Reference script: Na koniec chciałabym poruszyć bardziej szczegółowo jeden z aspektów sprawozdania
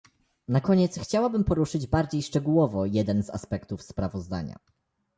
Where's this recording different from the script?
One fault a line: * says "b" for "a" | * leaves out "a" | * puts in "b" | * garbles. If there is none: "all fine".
all fine